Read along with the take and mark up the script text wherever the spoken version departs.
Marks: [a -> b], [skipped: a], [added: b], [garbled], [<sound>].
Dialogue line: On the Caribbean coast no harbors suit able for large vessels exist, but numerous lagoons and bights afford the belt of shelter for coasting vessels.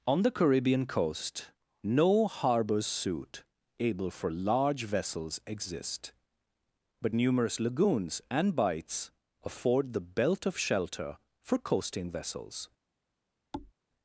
On the Caribbean coast no harbors suit able for large vessels exist, but numerous lagoons and bights afford the belt of shelter for coasting vessels. [thud]